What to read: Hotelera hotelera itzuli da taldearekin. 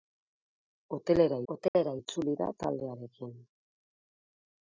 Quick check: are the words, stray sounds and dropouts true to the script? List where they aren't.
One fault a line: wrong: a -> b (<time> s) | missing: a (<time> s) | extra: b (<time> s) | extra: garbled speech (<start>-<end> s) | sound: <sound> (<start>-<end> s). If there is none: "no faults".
sound: dropout (1.7-1.7 s)